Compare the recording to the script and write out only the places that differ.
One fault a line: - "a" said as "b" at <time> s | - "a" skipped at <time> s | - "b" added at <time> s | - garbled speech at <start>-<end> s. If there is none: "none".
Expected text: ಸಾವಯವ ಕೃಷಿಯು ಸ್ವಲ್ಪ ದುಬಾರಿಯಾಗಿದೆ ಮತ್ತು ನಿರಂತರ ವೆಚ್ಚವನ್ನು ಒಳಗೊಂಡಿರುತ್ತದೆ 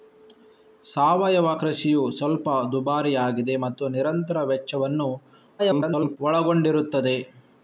- garbled speech at 5.6-6.2 s